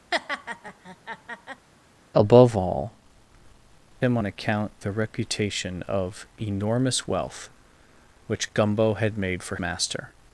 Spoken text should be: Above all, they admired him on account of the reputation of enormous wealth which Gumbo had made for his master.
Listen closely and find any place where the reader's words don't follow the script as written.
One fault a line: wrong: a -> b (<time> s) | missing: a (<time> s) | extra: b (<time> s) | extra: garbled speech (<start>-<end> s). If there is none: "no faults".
missing: they admired (2.9 s)
missing: of (4.7 s)
missing: his (9.6 s)